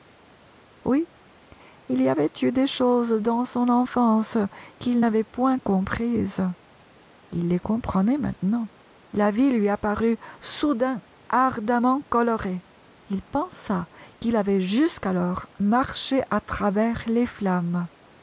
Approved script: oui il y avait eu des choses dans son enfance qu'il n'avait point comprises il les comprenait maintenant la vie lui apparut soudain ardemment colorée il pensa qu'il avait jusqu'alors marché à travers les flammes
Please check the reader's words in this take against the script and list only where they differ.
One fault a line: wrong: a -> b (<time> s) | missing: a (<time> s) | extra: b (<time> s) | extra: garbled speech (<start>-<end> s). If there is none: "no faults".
no faults